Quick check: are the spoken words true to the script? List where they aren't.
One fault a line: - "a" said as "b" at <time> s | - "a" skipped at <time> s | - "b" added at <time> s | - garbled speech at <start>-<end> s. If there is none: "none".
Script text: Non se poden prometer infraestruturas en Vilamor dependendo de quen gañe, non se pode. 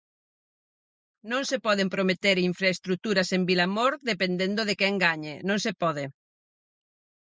none